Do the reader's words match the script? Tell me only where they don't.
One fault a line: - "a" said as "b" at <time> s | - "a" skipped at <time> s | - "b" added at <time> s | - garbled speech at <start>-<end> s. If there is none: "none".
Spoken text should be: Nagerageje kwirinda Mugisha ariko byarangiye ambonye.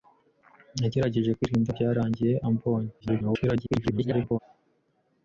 - "Mugisha ariko" skipped at 1.7 s
- garbled speech at 3.0-4.4 s